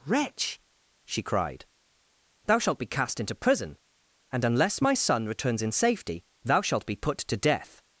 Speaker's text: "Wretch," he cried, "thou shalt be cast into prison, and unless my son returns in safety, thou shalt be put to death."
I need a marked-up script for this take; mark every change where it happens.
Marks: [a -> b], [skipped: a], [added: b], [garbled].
"Wretch," [he -> she] cried, "thou shalt be cast into prison, and unless my son returns in safety, thou shalt be put to death."